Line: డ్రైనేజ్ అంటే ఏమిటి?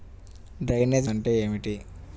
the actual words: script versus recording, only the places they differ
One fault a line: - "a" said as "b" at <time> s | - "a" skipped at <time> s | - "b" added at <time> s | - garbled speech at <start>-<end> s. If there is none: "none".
none